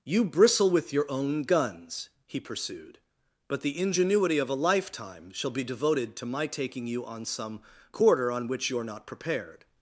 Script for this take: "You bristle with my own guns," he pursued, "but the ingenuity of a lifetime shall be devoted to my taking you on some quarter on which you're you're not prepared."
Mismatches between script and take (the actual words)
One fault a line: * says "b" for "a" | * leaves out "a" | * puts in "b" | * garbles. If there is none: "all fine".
* says "your" for "my"
* leaves out "you're"